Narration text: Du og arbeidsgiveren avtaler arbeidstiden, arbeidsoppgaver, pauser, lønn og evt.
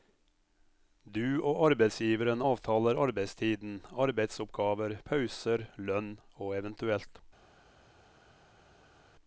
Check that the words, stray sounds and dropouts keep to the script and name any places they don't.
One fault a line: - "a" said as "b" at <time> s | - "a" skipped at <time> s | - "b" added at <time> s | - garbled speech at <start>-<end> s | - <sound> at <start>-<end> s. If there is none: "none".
none